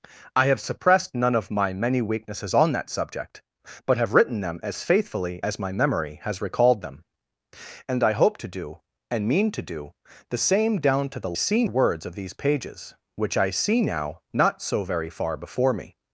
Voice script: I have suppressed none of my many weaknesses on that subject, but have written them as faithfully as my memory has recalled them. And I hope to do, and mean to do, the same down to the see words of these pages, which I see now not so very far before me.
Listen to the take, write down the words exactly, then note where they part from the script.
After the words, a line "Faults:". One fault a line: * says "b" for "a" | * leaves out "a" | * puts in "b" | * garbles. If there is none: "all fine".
I have suppressed none of my many weaknesses on that subject, but have written them as faithfully as my memory has recalled them. And I hope to do, and mean to do, the same down to the see words of these pages, which I see now not so very far before me.
Faults:
all fine